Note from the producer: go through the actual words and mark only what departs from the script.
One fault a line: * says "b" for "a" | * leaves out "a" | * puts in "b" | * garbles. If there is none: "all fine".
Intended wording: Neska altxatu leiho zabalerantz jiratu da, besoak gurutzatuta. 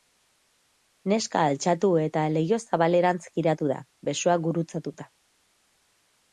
* puts in "eta"